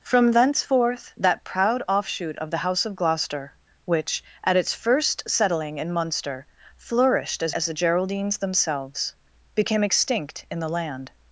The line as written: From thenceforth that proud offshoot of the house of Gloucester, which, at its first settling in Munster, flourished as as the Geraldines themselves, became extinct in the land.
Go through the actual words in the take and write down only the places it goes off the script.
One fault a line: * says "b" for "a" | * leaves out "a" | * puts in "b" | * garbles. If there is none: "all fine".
all fine